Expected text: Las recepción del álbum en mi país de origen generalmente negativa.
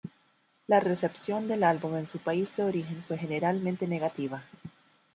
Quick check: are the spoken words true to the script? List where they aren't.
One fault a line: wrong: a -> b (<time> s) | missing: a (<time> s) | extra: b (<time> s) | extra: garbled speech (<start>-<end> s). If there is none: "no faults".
wrong: Las -> La (0.7 s)
wrong: mi -> su (2.1 s)
extra: fue (3.1 s)